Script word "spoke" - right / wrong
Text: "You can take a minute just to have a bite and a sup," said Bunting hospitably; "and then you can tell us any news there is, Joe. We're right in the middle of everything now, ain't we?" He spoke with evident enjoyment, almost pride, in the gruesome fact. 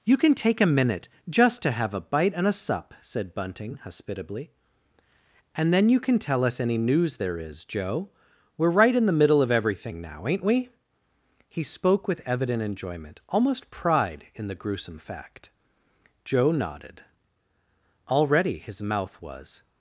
right